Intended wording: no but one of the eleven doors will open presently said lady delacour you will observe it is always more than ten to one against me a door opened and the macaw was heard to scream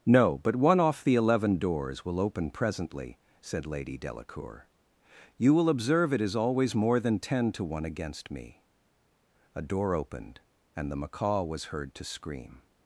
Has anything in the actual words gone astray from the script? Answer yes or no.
yes